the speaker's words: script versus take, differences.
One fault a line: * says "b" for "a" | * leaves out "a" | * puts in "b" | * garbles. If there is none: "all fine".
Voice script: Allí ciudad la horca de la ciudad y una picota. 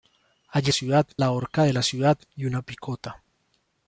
all fine